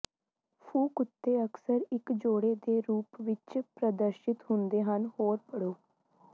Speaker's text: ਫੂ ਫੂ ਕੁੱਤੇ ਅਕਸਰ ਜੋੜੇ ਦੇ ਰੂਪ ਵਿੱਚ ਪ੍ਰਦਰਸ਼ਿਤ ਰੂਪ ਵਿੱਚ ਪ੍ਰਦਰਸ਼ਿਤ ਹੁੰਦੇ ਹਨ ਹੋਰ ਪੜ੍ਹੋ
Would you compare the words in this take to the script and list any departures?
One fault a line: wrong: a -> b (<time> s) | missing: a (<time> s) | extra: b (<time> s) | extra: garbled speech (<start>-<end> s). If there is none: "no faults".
missing: ਫੂ (0.9 s)
extra: ਇੱਕ (1.9 s)
missing: ਰੂਪ ਵਿੱਚ ਪ੍ਰਦਰਸ਼ਿਤ (4.4 s)